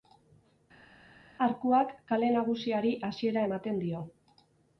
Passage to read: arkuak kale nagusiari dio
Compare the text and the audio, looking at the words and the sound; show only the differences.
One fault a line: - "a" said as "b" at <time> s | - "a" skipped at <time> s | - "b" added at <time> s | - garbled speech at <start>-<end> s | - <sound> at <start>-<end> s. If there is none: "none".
- "hasiera ematen" added at 3.1 s